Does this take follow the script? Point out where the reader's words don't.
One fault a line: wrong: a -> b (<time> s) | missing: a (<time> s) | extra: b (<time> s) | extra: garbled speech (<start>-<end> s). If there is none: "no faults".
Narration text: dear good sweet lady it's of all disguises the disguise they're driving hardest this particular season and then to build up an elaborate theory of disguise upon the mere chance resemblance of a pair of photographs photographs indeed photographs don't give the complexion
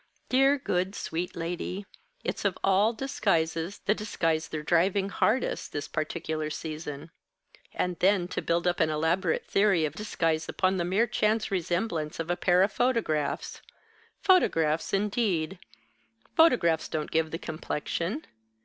no faults